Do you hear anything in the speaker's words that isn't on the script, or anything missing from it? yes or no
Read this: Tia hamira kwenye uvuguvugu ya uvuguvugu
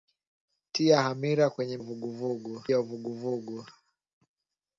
no